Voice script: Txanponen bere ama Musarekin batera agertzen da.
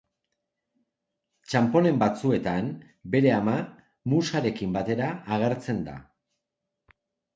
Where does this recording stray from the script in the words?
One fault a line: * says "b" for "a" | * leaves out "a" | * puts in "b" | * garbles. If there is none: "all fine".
* puts in "batzuetan"